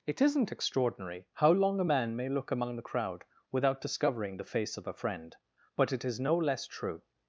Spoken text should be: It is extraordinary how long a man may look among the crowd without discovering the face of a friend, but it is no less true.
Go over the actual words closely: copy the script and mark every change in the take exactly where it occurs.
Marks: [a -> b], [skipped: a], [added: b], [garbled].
It [is -> isn't] extraordinary how long a man may look among the crowd without discovering the face of a friend, but it is no less true.